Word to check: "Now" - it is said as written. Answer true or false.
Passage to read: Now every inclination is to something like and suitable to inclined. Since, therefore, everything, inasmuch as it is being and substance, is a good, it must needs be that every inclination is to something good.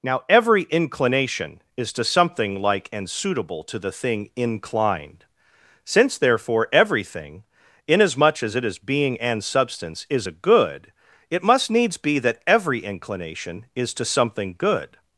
true